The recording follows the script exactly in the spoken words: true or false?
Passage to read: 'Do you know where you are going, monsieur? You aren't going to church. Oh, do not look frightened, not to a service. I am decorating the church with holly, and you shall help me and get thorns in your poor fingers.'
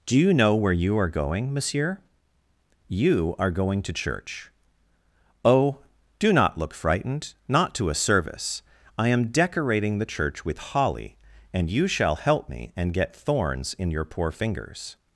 false